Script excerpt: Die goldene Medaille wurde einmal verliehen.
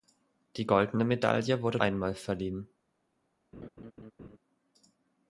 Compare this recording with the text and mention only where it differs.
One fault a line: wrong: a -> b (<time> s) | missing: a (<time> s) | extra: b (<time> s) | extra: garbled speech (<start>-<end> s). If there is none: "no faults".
no faults